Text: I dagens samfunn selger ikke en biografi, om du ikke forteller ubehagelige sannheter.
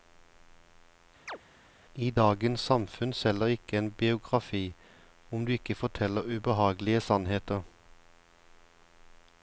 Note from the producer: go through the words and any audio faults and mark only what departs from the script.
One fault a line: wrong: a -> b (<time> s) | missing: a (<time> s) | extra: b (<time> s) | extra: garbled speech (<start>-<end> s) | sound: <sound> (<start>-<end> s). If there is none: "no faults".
sound: chirp (1.3-1.4 s)